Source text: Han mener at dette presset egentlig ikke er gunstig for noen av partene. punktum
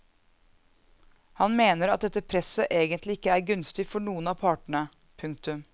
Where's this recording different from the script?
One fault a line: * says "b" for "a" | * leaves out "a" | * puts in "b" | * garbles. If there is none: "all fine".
all fine